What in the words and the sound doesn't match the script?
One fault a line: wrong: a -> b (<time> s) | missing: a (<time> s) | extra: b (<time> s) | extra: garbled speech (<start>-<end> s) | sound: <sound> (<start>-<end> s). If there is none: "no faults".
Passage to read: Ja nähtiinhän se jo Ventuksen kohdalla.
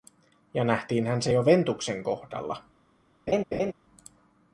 sound: laugh (3.3-3.7 s)